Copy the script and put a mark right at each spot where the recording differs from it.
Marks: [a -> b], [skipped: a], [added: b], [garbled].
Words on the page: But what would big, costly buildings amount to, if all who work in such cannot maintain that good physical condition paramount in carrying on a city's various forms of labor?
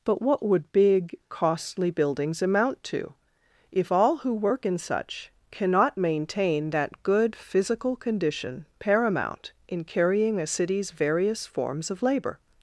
But what would big, costly buildings amount to, if all who work in such cannot maintain that good physical condition paramount in carrying [skipped: on] a city's various forms of labor?